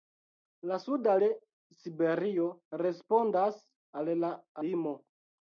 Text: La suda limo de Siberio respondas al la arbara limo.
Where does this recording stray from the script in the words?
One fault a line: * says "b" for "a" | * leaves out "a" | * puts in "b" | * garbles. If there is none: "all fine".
* leaves out "limo"
* leaves out "arbara"